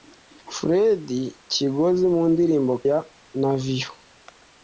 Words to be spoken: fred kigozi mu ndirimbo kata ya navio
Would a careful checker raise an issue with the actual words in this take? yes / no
yes